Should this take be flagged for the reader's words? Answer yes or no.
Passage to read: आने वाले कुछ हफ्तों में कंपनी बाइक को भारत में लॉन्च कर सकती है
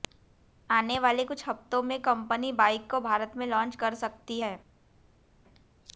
no